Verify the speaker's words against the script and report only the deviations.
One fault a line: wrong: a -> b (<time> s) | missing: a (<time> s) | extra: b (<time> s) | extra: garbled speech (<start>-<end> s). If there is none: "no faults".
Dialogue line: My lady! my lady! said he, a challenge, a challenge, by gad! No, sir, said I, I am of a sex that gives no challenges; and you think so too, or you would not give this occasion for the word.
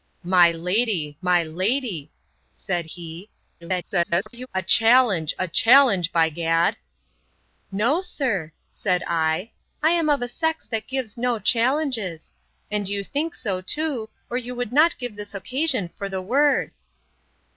extra: garbled speech (3.6-4.5 s)